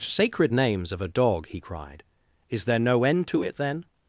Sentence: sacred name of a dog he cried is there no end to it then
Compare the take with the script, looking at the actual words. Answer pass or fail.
fail